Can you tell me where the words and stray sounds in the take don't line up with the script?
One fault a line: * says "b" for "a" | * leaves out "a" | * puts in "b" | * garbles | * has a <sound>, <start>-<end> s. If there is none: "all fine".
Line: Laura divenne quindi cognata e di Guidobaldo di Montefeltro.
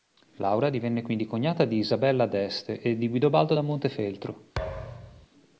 * puts in "di Isabella d'Este"
* says "da" for "di"
* has a thud, 4.6-5.3 s